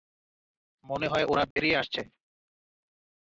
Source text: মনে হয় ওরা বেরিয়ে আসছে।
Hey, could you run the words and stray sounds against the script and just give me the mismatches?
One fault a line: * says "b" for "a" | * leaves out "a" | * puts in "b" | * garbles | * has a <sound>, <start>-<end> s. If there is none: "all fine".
* has a dropout, 1.5-1.6 s